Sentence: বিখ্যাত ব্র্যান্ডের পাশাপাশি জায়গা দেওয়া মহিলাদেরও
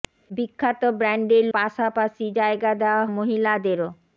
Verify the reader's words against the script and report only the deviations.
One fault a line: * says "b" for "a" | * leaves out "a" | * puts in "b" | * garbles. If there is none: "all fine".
all fine